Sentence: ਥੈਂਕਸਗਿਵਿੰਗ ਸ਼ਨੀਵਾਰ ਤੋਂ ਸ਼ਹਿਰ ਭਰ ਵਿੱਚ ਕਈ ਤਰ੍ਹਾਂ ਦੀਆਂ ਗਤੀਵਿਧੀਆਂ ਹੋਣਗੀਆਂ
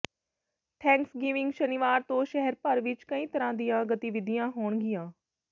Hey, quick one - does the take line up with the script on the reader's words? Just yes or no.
yes